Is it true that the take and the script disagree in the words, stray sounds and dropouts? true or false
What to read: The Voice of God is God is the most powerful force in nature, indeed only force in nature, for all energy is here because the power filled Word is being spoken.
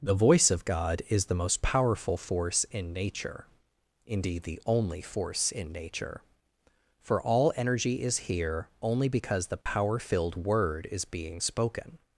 true